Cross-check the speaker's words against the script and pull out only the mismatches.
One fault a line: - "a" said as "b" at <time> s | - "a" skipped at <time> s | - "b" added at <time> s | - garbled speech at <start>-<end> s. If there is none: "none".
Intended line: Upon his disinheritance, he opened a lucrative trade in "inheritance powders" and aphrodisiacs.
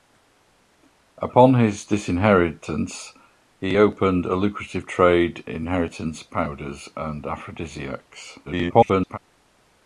- "in" skipped at 5.4 s
- garbled speech at 8.5-9.2 s